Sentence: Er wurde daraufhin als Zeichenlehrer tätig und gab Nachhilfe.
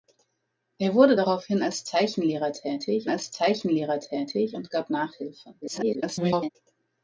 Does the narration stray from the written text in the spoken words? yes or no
yes